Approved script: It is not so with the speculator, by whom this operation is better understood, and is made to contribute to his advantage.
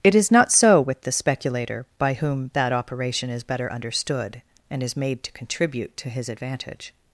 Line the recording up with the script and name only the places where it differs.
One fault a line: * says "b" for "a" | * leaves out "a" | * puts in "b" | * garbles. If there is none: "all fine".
* says "that" for "this"